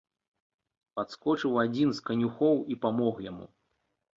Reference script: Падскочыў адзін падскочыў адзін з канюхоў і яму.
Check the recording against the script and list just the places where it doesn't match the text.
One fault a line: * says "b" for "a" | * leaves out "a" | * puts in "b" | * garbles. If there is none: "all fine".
* leaves out "падскочыў адзін"
* puts in "памог"